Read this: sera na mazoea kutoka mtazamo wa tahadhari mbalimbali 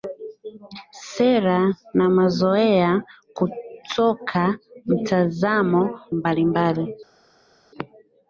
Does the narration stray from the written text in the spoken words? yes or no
yes